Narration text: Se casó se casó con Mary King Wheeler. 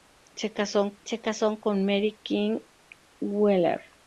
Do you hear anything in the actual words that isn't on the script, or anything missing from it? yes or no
no